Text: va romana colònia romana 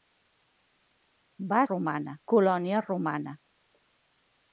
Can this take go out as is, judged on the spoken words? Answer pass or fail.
pass